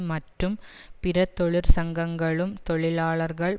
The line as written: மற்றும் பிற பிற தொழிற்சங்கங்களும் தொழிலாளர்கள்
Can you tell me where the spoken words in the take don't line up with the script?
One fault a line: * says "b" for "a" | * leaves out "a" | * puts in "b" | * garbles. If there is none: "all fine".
* leaves out "பிற"